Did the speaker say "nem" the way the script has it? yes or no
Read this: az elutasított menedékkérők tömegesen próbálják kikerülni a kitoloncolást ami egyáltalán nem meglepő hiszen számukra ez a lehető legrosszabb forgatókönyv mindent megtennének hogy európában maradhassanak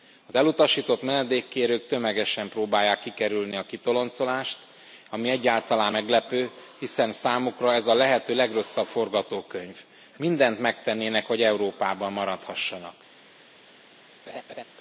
no